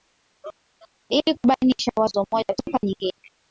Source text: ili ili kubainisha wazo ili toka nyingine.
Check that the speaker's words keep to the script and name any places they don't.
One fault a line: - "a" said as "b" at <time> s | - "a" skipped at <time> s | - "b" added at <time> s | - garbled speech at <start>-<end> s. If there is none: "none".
- "ili" skipped at 1.4 s
- "ili" said as "moja" at 2.3 s